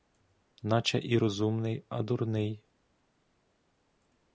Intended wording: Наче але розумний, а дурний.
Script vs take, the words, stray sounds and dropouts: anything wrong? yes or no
yes